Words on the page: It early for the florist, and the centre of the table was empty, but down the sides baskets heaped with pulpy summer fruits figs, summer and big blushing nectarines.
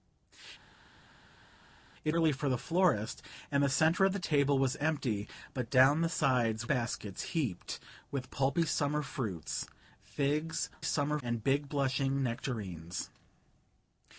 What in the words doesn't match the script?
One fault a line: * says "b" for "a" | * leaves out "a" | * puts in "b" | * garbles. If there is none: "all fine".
all fine